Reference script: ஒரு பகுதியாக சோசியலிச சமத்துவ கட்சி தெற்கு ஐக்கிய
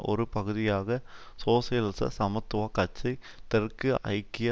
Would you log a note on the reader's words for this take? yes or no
no